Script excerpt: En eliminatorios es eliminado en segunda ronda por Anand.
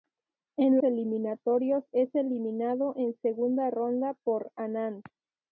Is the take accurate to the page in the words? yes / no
yes